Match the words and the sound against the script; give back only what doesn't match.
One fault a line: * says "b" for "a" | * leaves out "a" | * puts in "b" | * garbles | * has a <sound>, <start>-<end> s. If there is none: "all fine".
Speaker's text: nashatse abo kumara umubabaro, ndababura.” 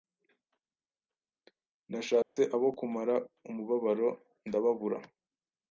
* has a dropout, 2.2-2.4 s